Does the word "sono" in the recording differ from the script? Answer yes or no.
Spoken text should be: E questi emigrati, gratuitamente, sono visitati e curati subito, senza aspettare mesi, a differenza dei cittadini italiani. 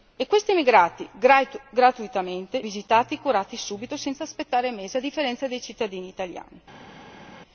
yes